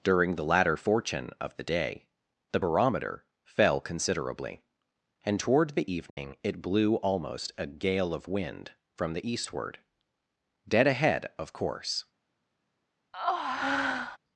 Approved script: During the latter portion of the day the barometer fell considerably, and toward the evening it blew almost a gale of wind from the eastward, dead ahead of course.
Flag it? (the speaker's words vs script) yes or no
yes